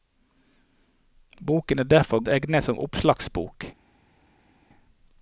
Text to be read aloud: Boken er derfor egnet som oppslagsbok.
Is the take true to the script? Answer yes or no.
yes